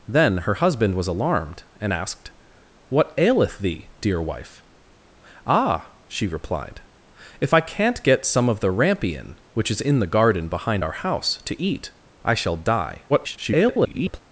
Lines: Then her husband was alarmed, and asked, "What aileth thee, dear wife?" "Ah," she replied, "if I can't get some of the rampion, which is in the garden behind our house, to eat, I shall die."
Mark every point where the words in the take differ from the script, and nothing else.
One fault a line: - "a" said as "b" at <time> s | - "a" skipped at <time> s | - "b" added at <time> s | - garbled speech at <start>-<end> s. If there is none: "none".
- garbled speech at 13.1-14.2 s